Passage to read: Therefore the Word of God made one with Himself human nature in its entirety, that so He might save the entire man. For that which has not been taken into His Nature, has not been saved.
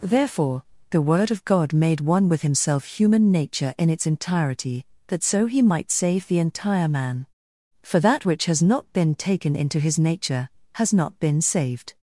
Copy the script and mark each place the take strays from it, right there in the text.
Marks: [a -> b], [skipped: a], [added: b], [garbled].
Therefore the Word of God made one with Himself human nature in its entirety, that so He might save the entire man. For that which has not been taken into His Nature, has not been saved.